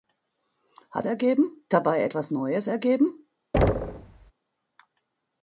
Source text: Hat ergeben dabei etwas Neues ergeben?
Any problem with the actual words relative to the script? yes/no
no